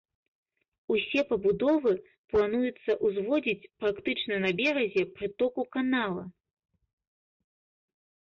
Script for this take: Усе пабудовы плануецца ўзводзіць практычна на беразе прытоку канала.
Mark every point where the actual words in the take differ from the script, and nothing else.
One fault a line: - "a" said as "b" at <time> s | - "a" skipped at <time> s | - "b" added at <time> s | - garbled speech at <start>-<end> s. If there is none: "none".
none